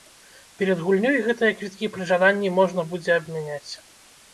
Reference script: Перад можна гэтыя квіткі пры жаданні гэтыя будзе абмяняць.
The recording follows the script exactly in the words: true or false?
false